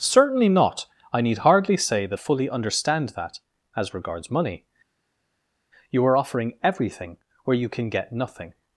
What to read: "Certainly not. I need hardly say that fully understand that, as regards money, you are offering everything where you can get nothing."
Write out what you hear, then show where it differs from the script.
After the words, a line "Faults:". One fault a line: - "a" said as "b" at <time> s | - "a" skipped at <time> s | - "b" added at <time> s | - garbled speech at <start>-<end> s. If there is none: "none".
"Certainly not. I need hardly say that fully understand that, as regards money, you are offering everything where you can get nothing."
Faults:
none